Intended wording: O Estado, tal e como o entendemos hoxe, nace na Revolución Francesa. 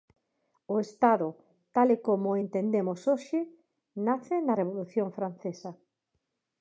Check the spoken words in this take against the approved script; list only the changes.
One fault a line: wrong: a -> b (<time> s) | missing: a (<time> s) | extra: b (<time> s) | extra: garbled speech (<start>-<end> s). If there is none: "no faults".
no faults